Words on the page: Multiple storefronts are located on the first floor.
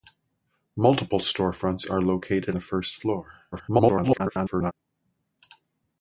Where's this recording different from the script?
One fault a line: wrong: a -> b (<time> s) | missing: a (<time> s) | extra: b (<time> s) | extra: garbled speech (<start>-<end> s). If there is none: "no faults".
missing: on (2.5 s)
extra: garbled speech (3.5-4.7 s)